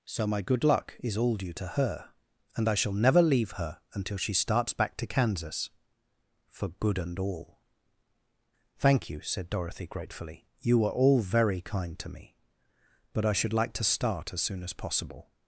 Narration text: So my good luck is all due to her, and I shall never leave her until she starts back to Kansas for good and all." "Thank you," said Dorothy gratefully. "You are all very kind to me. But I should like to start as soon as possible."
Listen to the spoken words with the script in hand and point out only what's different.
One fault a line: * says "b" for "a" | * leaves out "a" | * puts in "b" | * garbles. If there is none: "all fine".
* says "were" for "are"